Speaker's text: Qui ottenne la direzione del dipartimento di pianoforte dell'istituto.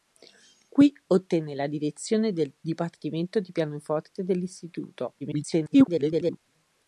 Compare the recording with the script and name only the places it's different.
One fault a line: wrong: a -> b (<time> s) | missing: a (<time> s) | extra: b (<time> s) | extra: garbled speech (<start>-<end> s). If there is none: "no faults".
extra: garbled speech (5.2-6.4 s)